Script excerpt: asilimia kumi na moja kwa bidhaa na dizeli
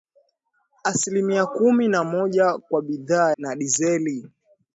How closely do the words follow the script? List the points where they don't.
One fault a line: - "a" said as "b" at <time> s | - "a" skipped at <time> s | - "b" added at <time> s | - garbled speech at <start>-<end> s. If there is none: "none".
none